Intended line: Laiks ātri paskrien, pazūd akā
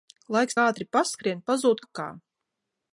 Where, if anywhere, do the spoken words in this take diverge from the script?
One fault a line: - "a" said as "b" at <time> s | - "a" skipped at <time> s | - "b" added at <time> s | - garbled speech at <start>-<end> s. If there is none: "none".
none